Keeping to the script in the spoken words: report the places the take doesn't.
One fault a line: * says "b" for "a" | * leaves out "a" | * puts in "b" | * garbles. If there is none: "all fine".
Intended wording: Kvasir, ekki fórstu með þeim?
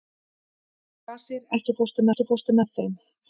* puts in "ekki fórstu"